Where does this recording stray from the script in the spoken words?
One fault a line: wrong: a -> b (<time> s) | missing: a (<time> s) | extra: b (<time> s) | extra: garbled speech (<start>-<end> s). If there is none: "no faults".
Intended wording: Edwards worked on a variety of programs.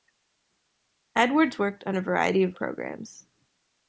no faults